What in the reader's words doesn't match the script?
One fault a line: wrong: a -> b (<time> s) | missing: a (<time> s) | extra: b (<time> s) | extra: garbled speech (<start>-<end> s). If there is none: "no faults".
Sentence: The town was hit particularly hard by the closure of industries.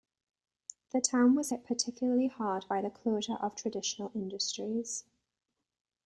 extra: traditional (3.5 s)